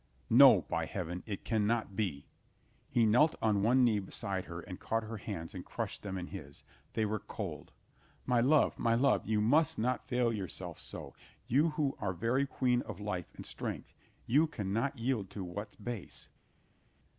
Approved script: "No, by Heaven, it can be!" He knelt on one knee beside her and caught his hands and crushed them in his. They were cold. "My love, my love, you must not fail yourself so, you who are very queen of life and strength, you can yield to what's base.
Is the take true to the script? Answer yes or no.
no